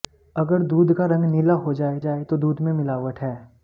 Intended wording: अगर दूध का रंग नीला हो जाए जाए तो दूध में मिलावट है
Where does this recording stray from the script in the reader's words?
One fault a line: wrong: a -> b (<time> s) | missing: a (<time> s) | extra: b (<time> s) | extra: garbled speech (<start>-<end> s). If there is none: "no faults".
no faults